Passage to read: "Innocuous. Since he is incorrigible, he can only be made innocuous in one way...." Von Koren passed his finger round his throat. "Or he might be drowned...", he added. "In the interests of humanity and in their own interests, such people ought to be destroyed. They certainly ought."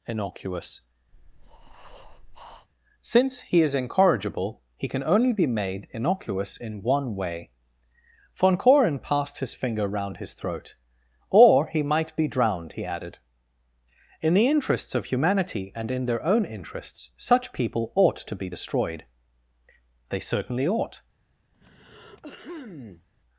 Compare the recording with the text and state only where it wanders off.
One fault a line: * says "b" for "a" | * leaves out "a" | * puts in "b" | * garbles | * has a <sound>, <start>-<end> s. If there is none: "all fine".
* has a breath, 1.1-2.7 s
* has a throat clearing, 21.5-23.1 s